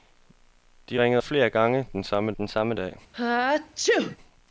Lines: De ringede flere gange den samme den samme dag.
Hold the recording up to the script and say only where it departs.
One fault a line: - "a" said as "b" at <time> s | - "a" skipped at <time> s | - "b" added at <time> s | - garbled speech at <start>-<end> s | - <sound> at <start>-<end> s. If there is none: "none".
- sneeze at 3.1-4.2 s